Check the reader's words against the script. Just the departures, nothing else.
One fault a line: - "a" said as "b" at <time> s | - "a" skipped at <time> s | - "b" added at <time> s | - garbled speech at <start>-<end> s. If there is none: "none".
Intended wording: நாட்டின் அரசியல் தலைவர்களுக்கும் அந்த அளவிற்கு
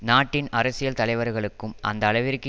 none